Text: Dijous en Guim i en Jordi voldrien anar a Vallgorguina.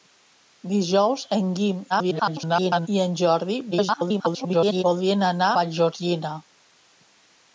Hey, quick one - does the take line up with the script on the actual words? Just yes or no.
no